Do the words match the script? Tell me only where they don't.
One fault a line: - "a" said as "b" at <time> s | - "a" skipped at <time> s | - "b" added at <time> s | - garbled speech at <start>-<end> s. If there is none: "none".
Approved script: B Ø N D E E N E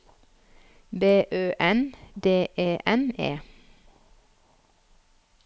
- "E" skipped at 2.8 s